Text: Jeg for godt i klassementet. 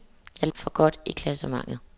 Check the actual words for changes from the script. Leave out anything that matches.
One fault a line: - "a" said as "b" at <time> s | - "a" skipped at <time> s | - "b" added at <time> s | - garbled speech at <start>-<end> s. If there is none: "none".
none